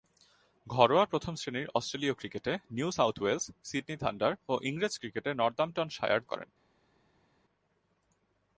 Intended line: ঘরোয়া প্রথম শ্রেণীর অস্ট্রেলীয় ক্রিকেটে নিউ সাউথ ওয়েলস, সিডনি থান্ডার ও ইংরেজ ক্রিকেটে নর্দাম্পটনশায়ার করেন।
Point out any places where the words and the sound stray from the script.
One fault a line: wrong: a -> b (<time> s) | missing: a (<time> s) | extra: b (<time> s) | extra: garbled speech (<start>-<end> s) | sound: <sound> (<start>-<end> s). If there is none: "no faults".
no faults